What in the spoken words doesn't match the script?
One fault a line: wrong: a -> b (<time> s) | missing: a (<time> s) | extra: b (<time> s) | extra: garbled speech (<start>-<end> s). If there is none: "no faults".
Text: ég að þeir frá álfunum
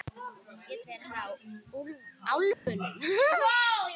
no faults